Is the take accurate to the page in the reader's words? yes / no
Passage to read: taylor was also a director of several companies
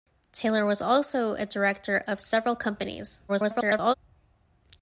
no